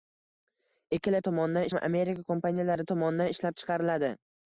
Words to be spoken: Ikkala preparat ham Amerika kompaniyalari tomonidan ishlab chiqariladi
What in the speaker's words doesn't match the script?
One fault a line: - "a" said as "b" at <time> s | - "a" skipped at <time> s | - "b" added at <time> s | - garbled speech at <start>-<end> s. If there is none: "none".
- "preparat" said as "tomonidan" at 1.3 s